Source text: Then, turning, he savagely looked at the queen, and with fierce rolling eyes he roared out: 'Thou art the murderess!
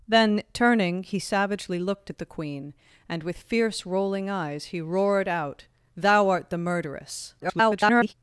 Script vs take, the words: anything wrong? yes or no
yes